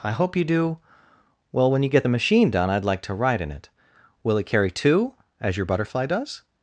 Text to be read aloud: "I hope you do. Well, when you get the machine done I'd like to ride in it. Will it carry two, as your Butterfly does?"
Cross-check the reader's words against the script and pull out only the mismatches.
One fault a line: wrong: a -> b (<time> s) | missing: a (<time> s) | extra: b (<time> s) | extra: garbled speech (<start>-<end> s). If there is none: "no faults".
no faults